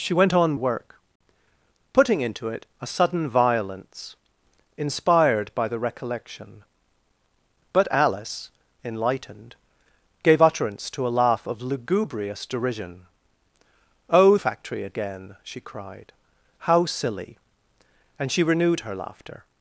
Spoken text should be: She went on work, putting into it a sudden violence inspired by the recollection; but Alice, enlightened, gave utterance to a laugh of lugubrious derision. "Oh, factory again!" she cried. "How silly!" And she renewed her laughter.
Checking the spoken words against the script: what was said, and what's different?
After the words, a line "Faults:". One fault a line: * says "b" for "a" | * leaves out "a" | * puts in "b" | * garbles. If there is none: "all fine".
She went on work, putting into it a sudden violence inspired by the recollection; but Alice, enlightened, gave utterance to a laugh of lugubrious derision. "Oh, factory again!" she cried. "How silly!" And she renewed her laughter.
Faults:
all fine